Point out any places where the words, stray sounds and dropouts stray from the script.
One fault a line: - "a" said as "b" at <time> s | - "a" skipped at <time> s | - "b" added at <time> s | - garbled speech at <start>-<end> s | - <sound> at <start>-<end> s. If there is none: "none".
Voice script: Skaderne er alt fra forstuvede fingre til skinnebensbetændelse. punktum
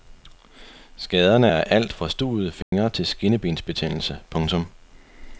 - "fra" skipped at 1.9 s
- dropout at 2.6-2.7 s